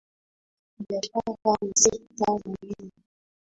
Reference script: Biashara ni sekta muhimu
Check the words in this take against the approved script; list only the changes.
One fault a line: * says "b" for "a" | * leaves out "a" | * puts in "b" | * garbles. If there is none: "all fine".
all fine